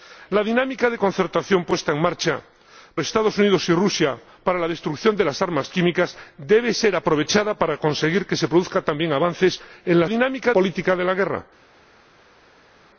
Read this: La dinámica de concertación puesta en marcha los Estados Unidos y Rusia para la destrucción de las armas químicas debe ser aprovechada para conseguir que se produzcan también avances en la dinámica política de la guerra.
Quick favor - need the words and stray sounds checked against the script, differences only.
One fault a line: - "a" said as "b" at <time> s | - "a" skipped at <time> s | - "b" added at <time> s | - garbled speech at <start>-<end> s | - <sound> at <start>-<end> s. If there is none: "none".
none